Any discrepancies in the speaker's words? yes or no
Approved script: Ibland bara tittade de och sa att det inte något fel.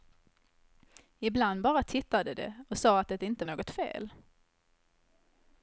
no